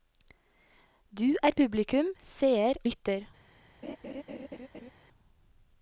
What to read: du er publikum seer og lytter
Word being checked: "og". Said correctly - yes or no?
no